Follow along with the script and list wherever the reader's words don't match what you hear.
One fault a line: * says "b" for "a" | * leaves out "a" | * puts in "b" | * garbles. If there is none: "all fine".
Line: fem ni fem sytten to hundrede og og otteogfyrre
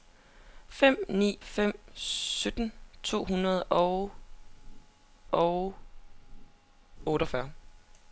all fine